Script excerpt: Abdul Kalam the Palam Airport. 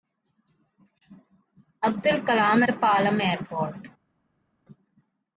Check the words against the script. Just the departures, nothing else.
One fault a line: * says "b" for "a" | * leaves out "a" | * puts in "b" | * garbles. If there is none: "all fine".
all fine